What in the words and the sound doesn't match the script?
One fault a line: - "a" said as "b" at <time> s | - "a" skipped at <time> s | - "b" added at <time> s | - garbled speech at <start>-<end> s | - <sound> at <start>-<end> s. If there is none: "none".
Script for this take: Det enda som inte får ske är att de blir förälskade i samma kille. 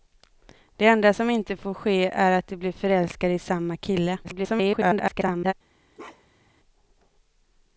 - garbled speech at 4.2-5.5 s
- bark at 5.9-6.5 s